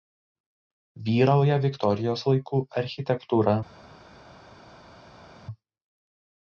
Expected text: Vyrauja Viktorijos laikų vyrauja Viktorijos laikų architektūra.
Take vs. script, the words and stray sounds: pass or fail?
fail